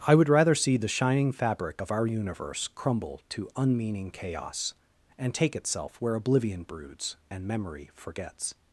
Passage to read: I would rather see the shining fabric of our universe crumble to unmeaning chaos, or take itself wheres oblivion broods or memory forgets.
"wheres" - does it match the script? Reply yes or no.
no